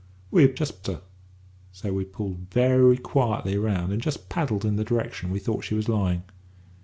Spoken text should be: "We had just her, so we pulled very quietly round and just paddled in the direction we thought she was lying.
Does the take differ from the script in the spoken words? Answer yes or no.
no